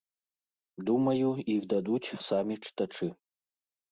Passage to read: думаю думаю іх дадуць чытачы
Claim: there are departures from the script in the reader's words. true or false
true